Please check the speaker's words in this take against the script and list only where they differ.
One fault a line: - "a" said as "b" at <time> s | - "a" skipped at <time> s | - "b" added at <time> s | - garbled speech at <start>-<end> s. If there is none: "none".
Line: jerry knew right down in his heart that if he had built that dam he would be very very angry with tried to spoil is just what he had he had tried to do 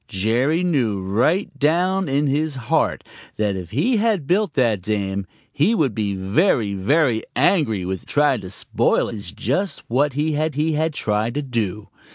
none